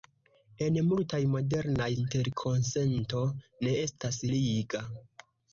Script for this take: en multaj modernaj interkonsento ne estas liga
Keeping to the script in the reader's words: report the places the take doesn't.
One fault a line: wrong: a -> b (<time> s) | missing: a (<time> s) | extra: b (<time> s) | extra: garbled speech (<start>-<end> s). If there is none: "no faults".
no faults